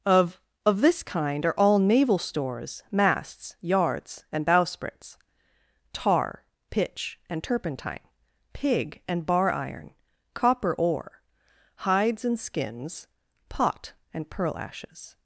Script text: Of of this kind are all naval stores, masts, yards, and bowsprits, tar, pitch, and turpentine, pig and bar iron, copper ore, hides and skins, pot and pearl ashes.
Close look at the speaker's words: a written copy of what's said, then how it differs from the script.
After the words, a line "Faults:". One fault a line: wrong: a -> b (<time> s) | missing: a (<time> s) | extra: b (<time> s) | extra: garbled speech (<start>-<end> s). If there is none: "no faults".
Of of this kind are all naval stores, masts, yards, and bowsprits, tar, pitch, and turpentine, pig and bar iron, copper ore, hides and skins, pot and pearl ashes.
Faults:
no faults